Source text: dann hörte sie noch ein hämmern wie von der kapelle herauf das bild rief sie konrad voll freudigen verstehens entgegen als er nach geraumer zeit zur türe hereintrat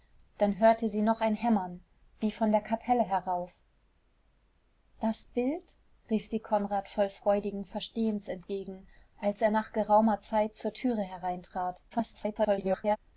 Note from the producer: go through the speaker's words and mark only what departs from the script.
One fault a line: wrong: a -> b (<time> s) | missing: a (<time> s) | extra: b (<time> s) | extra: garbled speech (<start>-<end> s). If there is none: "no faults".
extra: garbled speech (11.9-13.0 s)